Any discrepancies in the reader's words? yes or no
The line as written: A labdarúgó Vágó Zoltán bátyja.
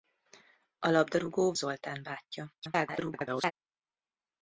yes